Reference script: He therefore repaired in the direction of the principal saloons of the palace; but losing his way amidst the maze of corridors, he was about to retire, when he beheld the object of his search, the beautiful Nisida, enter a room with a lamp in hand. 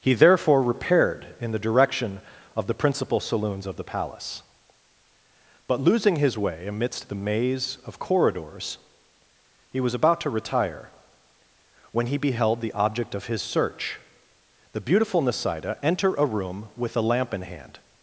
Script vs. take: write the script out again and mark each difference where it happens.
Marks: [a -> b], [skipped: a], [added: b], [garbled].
He therefore repaired in the direction of the principal saloons of the palace; but losing his way amidst the maze of corridors, he was about to retire, when he beheld the object of his search, the beautiful Nisida, enter a room with a lamp in hand.